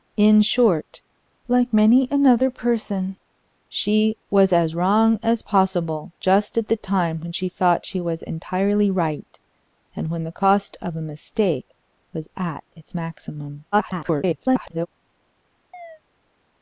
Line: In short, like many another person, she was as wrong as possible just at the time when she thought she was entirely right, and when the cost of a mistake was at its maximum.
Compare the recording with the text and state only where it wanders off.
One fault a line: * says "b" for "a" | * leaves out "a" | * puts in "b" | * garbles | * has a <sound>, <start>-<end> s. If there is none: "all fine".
* garbles
* has a chirp, 15.7-16.0 s